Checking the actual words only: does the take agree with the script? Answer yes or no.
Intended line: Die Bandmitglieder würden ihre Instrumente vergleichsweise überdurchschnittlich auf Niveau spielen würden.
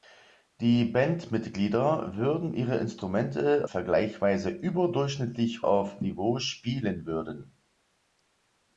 yes